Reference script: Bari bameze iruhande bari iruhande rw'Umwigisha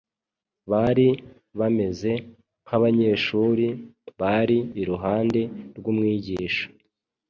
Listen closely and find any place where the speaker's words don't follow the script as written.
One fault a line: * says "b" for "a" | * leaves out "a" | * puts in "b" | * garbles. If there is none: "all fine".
* says "nk'abanyeshuri" for "iruhande"